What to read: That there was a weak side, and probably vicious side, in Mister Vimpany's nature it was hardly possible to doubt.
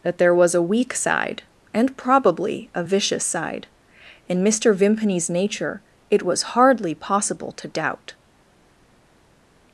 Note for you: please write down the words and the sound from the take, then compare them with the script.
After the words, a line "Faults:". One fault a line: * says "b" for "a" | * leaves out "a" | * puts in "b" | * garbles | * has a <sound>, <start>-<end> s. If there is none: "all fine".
That there was a weak side, and probably a vicious side, in Mister Vimpany's nature it was hardly possible to doubt.
Faults:
* puts in "a"